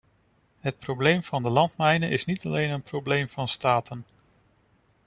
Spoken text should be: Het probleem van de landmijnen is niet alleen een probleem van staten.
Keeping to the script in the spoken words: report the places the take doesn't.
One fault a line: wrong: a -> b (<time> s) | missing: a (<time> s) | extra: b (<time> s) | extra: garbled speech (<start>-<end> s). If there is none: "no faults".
no faults